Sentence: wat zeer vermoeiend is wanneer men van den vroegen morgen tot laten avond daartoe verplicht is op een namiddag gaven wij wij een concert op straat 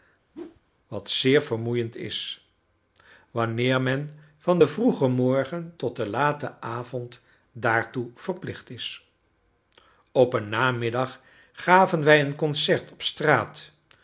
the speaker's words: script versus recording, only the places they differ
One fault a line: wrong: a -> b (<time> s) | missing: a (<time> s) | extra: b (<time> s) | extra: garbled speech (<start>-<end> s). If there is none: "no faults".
extra: den (5.9 s)
missing: wij (12.2 s)